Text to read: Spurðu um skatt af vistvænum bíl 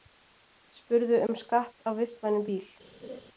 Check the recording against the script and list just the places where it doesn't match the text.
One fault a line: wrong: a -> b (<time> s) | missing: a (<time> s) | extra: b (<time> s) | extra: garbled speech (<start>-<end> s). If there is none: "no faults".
no faults